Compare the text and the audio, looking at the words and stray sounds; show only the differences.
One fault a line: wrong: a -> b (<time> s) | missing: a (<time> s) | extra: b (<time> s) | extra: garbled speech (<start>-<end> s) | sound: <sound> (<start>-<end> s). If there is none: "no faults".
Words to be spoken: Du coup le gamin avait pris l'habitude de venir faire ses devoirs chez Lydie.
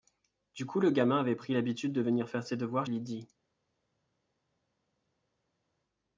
missing: chez (2.9 s)